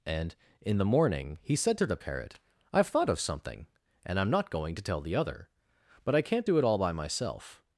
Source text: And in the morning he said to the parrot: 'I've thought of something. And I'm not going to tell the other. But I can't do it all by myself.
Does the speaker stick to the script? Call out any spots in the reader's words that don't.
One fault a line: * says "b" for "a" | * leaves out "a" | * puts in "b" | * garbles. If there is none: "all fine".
all fine